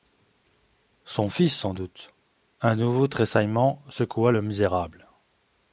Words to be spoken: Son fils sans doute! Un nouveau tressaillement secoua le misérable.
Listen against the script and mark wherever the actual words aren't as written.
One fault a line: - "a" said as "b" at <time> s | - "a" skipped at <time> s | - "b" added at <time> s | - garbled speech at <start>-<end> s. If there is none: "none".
none